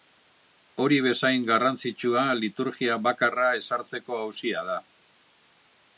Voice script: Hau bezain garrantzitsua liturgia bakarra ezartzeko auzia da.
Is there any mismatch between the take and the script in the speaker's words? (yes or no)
yes